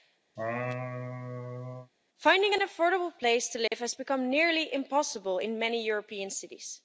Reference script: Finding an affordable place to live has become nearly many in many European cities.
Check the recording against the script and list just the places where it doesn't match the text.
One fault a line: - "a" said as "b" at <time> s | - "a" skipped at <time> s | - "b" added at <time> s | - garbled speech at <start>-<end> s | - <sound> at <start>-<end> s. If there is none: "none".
- laugh at 0.4-1.9 s
- dropout at 3.7-3.7 s
- "many" said as "impossible" at 4.7 s